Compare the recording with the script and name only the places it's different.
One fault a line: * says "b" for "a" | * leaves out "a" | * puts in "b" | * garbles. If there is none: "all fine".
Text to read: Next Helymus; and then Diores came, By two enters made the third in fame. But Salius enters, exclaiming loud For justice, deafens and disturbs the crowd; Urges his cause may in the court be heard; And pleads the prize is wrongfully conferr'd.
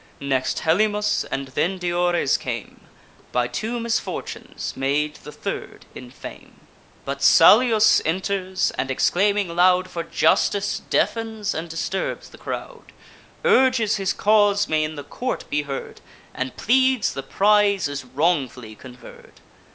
* says "misfortunes" for "enters"
* puts in "and"